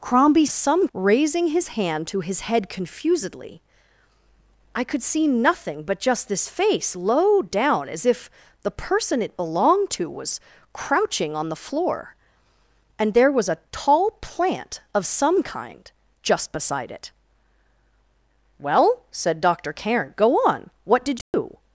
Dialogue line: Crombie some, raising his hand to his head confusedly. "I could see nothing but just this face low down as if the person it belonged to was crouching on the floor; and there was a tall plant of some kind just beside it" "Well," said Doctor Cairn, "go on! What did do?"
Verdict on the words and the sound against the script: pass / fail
fail